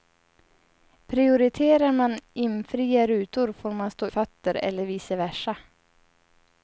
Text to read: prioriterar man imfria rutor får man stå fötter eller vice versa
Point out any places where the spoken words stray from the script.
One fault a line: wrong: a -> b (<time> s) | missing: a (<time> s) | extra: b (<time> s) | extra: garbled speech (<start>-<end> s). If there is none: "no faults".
no faults